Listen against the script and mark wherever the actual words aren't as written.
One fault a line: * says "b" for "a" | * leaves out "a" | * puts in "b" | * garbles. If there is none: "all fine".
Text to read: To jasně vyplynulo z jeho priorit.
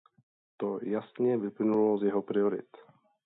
all fine